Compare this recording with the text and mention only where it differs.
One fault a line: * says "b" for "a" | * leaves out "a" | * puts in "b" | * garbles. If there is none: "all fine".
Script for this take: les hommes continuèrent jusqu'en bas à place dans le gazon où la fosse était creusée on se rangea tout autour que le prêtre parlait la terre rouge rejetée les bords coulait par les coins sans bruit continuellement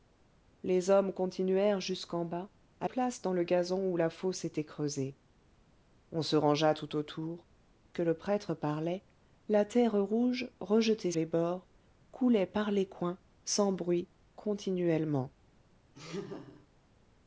all fine